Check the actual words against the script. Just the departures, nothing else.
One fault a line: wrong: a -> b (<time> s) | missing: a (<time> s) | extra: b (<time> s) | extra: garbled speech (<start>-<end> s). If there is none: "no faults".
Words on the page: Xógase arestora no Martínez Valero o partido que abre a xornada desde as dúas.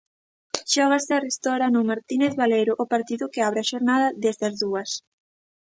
no faults